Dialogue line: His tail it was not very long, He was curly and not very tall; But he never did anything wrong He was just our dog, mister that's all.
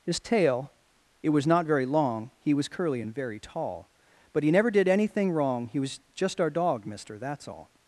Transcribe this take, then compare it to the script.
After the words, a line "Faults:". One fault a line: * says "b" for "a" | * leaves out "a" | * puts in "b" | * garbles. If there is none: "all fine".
His tail it was not very long, He was curly and very tall; But he never did anything wrong He was just our dog, mister that's all.
Faults:
* leaves out "not"